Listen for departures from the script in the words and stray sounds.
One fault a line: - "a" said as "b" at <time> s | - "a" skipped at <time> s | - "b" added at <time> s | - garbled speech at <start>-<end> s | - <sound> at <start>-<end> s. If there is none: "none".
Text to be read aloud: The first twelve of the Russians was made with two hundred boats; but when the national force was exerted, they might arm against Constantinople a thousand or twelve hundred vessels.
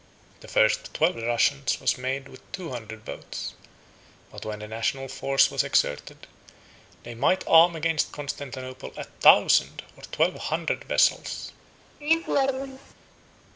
- laugh at 12.0-12.9 s